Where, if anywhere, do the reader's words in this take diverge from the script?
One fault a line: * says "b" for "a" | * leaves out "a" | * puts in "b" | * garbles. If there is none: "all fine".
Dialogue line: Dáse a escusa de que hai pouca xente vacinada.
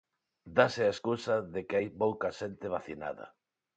all fine